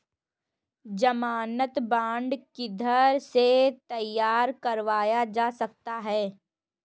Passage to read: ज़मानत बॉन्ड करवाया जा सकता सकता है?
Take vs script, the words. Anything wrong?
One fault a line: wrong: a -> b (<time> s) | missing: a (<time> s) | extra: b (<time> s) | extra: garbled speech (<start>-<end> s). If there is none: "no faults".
extra: किधर से तैयार (2.5 s)
missing: सकता (6.0 s)